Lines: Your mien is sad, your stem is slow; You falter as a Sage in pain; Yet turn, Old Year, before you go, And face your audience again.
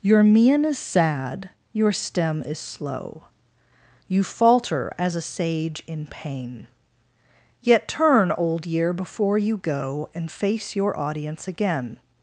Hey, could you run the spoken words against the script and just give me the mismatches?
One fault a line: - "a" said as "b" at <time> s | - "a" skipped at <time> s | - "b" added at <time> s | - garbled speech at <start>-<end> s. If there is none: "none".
none